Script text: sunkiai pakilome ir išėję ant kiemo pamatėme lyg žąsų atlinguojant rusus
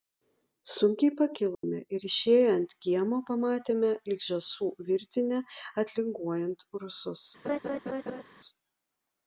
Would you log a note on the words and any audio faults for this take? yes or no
yes